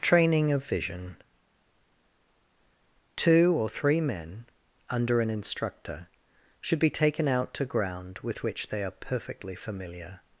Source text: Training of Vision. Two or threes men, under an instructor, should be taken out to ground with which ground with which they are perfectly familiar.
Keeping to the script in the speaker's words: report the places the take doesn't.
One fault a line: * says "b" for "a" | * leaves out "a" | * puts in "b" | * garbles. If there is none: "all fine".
* says "three" for "threes"
* leaves out "ground with which"